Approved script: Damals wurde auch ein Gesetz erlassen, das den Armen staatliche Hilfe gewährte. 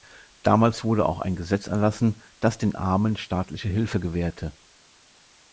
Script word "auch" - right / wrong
right